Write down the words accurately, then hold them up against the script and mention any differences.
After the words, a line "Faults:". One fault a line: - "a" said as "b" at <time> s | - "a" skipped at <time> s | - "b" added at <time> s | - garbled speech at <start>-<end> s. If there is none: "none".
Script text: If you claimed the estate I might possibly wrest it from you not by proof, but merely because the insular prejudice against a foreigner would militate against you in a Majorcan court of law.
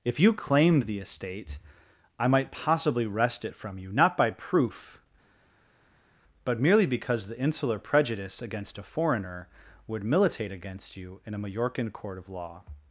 If you claimed the estate I might possibly wrest it from you not by proof, but merely because the insular prejudice against a foreigner would militate against you in a Majorcan court of law.
Faults:
none